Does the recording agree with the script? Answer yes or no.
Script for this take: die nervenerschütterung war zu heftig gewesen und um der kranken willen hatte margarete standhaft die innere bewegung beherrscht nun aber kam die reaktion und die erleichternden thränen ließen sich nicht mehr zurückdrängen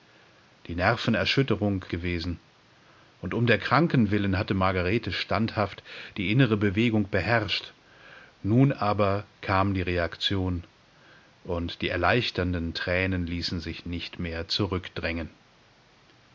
no